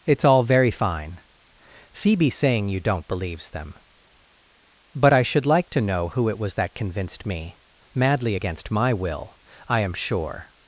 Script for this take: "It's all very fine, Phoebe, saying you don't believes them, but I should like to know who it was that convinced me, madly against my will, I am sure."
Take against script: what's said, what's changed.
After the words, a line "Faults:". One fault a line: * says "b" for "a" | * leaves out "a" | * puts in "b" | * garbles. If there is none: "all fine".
"It's all very fine, Phoebe, saying you don't believes them, but I should like to know who it was that convinced me, madly against my will, I am sure."
Faults:
all fine